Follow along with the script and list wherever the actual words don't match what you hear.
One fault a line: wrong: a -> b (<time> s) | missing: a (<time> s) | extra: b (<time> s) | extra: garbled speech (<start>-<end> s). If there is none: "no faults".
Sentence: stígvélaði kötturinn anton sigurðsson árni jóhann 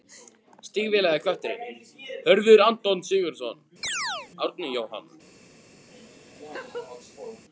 extra: hörður (2.3 s)